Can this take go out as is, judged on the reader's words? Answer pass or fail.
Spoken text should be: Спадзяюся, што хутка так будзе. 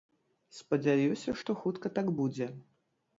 pass